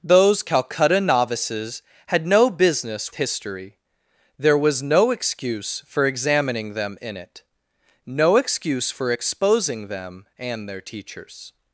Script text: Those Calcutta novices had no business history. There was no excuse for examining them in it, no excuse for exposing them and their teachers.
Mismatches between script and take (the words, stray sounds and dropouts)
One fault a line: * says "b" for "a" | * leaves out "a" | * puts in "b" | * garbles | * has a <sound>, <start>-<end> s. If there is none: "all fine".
all fine